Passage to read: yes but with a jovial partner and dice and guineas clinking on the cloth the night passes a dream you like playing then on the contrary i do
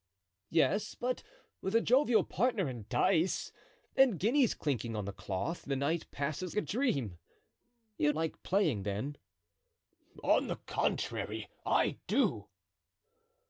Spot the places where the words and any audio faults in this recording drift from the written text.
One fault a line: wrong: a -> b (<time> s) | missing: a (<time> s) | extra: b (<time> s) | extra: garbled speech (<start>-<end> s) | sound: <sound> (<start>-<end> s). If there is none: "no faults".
no faults